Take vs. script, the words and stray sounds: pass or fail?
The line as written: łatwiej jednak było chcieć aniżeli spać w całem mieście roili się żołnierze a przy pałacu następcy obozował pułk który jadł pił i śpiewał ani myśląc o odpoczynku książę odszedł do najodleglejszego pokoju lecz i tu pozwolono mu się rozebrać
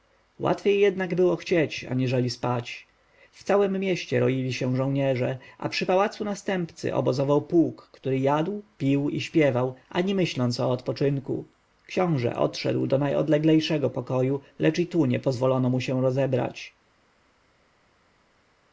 fail